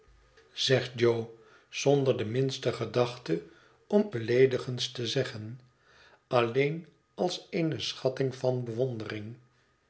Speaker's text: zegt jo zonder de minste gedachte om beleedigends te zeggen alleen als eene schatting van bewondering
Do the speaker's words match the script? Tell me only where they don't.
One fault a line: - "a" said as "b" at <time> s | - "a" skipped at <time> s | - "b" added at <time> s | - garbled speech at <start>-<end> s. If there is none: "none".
none